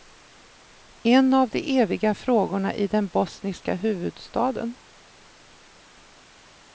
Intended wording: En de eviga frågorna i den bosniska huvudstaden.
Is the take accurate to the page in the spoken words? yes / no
no